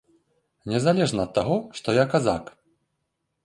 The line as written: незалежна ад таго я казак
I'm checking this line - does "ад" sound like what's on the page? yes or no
yes